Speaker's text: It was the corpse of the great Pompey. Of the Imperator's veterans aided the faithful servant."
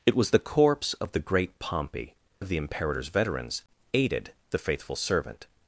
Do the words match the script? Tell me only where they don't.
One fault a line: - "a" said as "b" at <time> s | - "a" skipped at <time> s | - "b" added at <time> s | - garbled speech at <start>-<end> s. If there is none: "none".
none